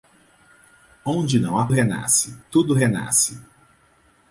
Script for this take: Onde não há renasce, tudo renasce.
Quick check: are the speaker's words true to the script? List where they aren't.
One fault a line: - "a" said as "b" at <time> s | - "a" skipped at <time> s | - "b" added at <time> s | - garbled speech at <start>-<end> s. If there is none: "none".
none